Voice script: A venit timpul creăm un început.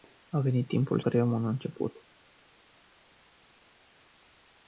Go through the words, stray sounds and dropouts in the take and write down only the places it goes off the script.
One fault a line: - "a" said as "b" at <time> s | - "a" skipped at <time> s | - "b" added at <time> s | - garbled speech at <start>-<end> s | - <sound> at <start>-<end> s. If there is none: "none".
none